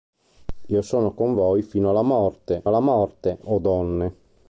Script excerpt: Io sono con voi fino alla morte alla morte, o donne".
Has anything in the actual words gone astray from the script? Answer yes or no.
no